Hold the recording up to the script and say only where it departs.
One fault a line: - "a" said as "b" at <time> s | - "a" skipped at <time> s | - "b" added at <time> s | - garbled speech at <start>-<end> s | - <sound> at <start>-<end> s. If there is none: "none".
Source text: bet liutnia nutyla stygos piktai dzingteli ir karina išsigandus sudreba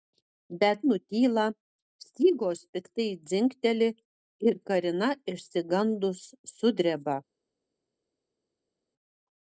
- "liutnia" skipped at 0.8 s